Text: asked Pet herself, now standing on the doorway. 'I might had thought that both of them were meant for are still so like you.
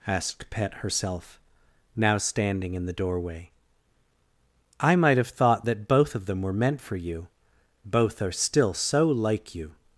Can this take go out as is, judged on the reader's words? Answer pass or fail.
fail